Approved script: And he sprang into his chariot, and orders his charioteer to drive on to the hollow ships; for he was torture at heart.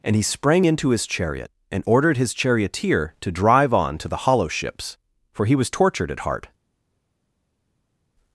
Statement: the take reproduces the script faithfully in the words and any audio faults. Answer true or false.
false